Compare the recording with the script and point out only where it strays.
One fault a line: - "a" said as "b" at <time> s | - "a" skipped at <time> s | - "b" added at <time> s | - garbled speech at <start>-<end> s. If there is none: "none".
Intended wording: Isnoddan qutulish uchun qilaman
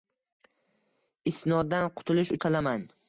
- "uchun" skipped at 2.3 s